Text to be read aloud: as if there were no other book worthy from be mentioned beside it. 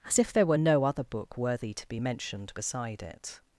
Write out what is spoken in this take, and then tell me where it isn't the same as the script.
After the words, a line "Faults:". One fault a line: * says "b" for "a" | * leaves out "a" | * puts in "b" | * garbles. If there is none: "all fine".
as if there were no other book worthy to be mentioned beside it.
Faults:
* says "to" for "from"